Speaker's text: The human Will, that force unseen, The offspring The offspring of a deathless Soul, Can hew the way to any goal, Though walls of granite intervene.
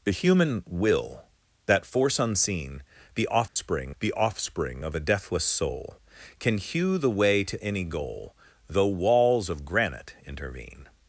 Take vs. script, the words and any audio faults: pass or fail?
fail